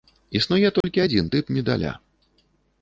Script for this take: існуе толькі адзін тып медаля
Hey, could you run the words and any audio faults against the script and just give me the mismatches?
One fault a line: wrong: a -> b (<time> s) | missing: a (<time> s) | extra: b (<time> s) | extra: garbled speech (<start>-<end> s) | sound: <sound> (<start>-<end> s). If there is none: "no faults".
sound: dropout (0.8-0.8 s)